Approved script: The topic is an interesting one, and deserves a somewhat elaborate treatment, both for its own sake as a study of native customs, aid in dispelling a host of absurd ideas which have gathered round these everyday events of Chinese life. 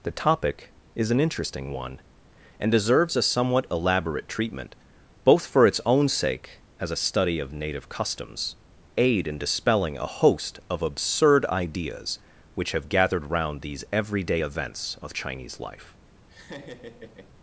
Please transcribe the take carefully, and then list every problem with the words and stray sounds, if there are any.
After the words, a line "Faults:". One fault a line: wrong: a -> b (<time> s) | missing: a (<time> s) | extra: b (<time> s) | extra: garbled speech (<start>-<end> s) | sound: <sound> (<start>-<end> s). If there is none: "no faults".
The topic is an interesting one, and deserves a somewhat elaborate treatment, both for its own sake as a study of native customs, aid in dispelling a host of absurd ideas which have gathered round these everyday events of Chinese life.
Faults:
sound: laugh (16.3-17.4 s)